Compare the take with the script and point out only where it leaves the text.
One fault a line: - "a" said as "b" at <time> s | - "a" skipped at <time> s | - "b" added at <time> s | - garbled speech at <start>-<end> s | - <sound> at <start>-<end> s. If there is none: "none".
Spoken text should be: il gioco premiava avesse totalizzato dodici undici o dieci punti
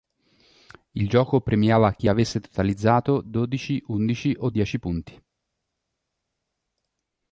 - "chi" added at 1.9 s